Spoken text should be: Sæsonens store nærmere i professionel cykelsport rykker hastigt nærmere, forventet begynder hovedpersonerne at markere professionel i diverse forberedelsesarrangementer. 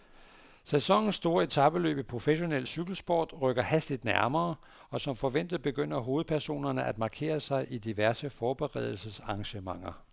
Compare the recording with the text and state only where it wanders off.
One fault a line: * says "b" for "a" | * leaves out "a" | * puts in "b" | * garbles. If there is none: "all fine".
* says "etapeløb" for "nærmere"
* puts in "og som"
* says "sig" for "professionel"